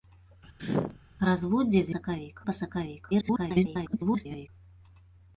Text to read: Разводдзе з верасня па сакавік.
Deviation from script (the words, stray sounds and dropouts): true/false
true